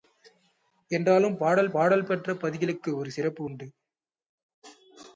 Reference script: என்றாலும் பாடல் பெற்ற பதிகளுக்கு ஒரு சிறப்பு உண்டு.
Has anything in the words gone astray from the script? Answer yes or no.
yes